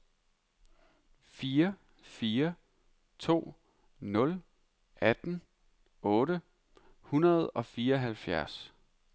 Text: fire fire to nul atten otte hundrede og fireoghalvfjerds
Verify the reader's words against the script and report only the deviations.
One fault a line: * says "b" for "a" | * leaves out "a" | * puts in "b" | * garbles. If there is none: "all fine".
all fine